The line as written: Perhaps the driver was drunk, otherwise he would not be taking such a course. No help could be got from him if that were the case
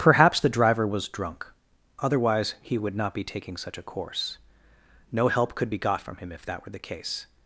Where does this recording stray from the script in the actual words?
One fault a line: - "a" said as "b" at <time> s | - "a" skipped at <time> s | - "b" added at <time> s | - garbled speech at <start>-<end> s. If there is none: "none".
none